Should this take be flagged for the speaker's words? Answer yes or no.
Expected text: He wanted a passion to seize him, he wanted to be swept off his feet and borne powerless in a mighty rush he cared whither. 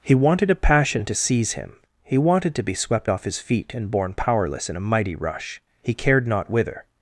yes